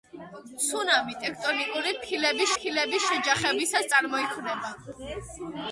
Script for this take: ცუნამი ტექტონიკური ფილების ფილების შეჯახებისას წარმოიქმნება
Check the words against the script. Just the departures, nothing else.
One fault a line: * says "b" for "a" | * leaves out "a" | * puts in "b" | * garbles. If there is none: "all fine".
all fine